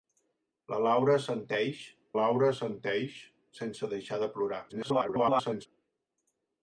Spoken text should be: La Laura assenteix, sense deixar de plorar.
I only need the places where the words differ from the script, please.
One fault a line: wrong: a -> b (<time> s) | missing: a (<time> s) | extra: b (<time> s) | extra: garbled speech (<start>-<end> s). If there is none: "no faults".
extra: Laura assenteix (2.2 s)
extra: garbled speech (4.7-5.7 s)